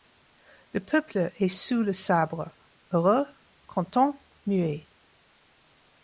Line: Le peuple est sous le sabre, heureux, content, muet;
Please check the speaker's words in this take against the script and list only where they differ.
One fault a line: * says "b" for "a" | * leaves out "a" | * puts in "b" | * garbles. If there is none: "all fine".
all fine